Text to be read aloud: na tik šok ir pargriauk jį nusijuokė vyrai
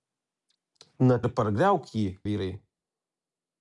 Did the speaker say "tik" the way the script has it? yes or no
no